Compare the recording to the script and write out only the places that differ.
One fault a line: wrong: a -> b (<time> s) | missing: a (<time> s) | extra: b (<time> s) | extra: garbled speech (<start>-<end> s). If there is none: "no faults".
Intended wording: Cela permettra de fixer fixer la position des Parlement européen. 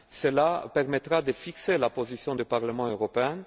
missing: fixer (1.8 s)
wrong: des -> du (2.3 s)